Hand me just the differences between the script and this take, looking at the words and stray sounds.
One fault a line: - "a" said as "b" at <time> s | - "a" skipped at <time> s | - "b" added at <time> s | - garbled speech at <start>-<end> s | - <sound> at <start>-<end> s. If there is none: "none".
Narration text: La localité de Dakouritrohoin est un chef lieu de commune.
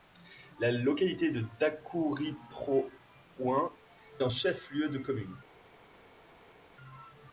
- "est" skipped at 3.7 s